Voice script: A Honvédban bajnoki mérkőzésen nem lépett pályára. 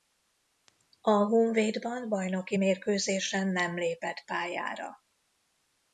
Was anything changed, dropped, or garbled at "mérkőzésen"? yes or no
no